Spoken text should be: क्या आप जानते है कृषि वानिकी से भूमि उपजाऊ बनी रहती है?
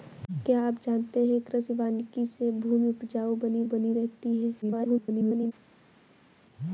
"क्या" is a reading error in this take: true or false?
false